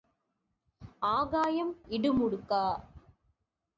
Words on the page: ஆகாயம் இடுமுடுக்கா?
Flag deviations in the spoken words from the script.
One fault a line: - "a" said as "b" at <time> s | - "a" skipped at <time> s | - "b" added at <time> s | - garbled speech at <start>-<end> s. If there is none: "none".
none